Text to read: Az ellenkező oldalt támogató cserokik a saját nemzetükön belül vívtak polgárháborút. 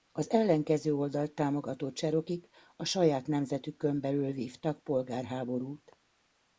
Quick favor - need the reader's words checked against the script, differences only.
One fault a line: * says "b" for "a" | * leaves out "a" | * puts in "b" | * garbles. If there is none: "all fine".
all fine